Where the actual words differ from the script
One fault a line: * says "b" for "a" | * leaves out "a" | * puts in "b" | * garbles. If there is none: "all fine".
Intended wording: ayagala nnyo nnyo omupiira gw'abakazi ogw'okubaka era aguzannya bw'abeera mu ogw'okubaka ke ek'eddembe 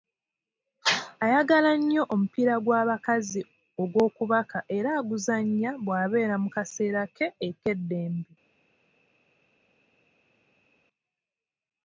* leaves out "nnyo"
* says "kaseera" for "ogw'okubaka"